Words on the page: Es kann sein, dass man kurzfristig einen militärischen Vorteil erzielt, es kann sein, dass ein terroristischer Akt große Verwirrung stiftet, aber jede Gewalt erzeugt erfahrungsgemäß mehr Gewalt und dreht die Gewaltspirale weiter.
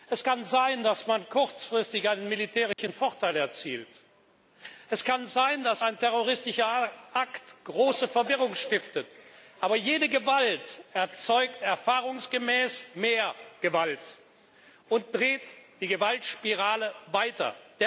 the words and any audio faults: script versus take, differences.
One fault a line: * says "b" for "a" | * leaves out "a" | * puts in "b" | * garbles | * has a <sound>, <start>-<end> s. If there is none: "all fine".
* has a dropout, 2.7-2.8 s